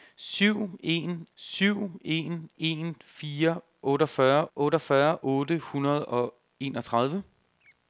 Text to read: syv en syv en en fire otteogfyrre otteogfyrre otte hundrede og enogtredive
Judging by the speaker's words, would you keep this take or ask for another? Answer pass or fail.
pass